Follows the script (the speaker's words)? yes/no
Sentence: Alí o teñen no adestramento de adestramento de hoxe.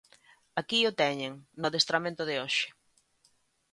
no